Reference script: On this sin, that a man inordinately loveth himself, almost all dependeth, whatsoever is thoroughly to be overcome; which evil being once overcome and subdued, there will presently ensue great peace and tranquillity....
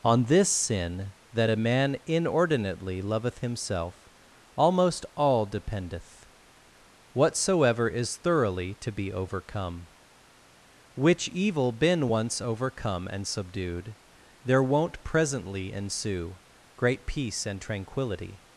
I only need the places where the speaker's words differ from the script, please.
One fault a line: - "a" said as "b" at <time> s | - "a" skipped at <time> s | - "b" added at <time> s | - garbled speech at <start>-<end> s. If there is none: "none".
- "being" said as "been" at 11.7 s
- "will" said as "won't" at 14.6 s